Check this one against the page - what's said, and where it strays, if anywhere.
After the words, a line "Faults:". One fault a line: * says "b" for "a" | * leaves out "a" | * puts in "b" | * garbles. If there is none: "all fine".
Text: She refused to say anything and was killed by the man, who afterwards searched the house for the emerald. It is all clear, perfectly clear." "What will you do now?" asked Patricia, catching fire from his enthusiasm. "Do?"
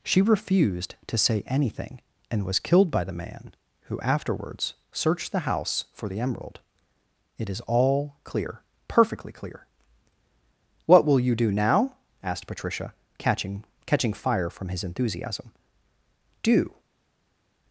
She refused to say anything and was killed by the man, who afterwards searched the house for the emerald. It is all clear, perfectly clear." "What will you do now?" asked Patricia, catching catching fire from his enthusiasm. "Do?"
Faults:
* puts in "catching"